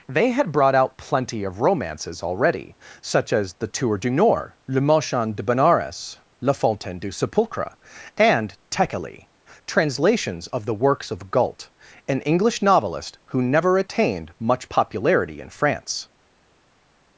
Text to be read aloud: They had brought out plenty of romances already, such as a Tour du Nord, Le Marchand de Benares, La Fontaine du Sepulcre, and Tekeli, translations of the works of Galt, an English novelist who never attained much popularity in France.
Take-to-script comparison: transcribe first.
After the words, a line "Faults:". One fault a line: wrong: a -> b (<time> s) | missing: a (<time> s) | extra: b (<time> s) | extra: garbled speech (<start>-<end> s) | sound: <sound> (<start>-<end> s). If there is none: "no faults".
They had brought out plenty of romances already, such as the Tour du Nord, Le Marchand de Benares, La Fontaine du Sepulcre, and Tekeli, translations of the works of Galt, an English novelist who never attained much popularity in France.
Faults:
wrong: a -> the (3.5 s)